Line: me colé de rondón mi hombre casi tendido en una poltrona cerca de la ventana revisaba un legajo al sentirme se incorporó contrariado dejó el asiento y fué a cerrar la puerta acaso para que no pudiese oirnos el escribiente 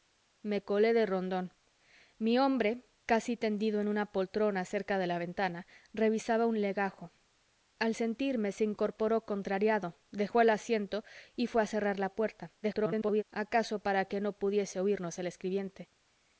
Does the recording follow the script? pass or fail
fail